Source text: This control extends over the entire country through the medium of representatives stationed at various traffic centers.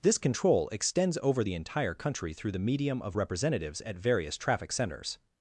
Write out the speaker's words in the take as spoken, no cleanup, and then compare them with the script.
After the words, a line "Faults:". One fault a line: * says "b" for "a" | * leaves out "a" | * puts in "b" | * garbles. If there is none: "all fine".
This control extends over the entire country through the medium of representatives at various traffic centers.
Faults:
* leaves out "stationed"